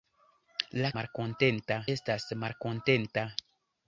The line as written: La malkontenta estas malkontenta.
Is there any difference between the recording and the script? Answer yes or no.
no